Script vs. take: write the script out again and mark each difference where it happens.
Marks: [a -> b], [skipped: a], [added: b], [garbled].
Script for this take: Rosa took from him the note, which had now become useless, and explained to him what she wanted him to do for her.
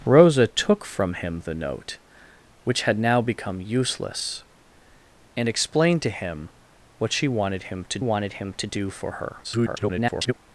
Rosa took from him the note, which had now become useless, and explained to him what she wanted him to [added: wanted him to] do for her. [garbled]